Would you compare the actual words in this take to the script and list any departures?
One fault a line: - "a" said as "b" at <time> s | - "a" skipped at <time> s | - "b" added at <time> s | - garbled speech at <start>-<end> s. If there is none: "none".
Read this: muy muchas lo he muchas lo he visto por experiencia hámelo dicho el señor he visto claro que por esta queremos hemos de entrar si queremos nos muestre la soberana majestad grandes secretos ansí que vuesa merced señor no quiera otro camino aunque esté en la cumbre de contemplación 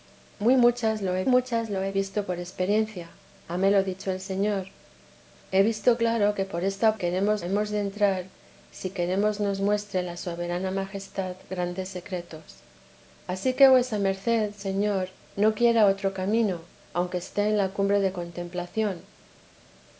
none